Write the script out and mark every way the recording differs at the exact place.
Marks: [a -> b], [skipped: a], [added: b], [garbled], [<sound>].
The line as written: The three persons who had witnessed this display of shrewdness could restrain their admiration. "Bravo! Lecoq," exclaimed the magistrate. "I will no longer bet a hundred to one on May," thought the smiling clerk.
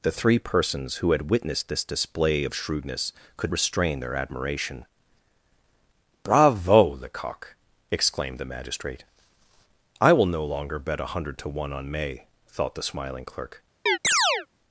The three persons who had witnessed this display of shrewdness could restrain their admiration. "Bravo! Lecoq," exclaimed the magistrate. "I will no longer bet a hundred to one on May," thought the smiling clerk. [chirp]